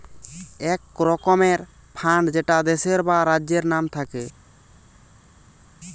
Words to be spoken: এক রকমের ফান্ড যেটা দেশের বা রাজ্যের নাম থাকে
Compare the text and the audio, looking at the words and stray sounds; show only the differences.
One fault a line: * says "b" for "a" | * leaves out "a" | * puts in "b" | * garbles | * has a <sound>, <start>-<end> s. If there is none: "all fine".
all fine